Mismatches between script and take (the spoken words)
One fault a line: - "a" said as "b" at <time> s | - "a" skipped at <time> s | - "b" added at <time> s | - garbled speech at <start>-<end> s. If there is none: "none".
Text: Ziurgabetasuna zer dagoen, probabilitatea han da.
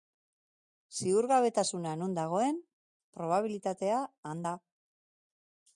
- "zer" said as "non" at 2.0 s